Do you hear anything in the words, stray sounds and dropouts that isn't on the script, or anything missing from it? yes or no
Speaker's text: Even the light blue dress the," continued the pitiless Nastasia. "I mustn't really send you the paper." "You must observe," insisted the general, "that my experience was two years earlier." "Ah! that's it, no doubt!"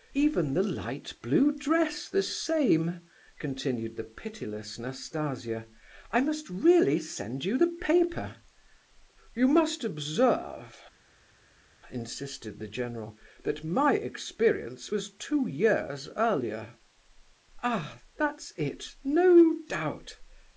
yes